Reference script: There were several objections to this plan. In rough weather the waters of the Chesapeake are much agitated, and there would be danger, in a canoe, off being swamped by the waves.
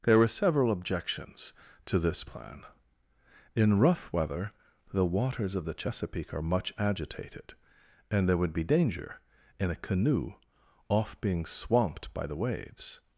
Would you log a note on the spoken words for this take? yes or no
no